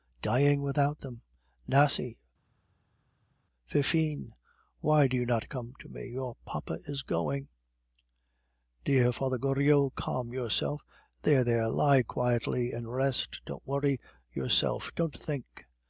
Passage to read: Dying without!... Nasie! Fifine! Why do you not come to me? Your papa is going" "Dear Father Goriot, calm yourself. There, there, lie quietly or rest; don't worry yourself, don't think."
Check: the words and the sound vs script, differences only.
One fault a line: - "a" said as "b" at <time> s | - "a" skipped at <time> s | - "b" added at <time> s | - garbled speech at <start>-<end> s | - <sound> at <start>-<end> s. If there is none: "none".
- "them" added at 1.0 s
- "or" said as "and" at 12.7 s